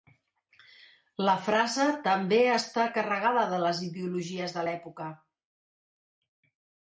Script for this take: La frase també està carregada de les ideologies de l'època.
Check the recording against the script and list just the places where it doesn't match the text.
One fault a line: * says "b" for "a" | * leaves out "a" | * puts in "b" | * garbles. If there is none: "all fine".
all fine